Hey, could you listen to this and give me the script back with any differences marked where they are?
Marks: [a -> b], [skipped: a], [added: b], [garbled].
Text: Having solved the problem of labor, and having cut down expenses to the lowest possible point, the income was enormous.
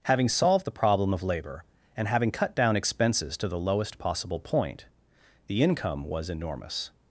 Having solved the problem of labor, and having cut down expenses to the lowest possible point, the income was enormous.